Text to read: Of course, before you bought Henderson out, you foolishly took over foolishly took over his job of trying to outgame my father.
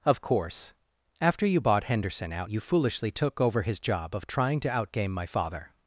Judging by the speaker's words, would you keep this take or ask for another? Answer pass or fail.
fail